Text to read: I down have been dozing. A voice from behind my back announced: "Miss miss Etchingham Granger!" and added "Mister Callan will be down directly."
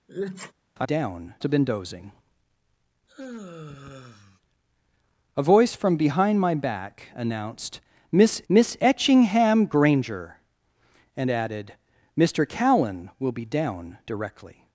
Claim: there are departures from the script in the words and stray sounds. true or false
true